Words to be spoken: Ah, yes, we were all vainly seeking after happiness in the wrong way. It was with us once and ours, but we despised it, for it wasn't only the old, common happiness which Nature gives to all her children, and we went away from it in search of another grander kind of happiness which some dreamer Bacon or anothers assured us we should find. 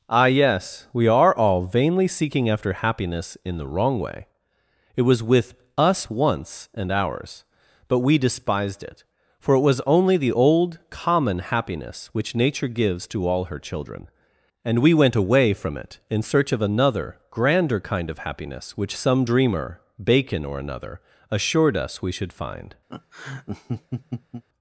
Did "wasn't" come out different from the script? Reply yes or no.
yes